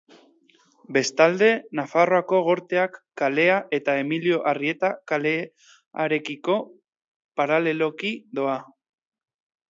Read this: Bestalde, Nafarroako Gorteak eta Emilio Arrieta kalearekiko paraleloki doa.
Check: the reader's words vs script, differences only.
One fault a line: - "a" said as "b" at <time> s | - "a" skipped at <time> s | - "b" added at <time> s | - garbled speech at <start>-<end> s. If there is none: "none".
- "kalea" added at 3.2 s